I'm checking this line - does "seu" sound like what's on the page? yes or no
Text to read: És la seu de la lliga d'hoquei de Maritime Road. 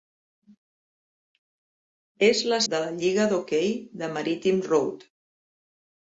no